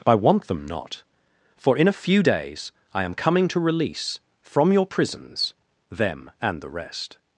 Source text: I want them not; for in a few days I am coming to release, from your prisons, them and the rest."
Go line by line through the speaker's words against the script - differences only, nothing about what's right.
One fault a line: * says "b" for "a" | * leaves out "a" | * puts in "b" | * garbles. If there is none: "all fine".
all fine